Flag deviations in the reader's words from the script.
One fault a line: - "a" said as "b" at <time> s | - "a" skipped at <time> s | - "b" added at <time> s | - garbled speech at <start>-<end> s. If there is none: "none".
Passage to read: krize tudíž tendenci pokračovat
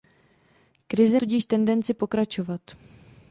none